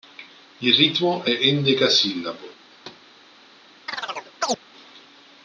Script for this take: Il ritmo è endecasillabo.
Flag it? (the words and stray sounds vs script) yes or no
yes